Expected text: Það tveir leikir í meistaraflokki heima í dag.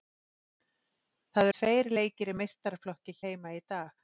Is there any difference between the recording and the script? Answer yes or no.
no